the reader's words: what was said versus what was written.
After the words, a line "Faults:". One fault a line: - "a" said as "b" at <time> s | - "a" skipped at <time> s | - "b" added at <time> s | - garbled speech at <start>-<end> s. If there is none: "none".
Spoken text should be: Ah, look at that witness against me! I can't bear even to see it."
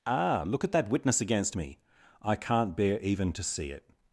Ah, look at that witness against me! I can't bear even to see it."
Faults:
none